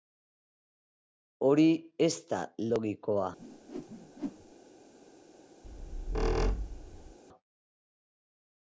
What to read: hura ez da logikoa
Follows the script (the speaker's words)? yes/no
no